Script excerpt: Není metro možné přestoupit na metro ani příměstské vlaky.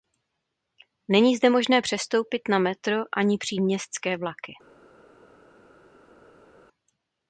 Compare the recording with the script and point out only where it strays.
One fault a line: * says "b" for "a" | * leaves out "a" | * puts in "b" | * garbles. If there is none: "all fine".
* says "zde" for "metro"